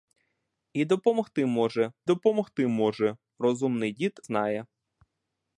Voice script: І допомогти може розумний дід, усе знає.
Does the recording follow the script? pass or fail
fail